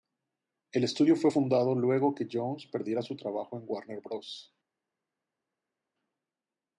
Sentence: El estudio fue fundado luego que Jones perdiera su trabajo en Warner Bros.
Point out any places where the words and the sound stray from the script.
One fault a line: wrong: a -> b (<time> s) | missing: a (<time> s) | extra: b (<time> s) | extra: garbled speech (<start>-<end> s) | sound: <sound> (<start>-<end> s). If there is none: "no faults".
no faults